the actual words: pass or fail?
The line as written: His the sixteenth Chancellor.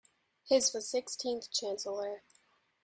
pass